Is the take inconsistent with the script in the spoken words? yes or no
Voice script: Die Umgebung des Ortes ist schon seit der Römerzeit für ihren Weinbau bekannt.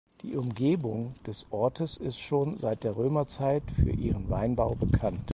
no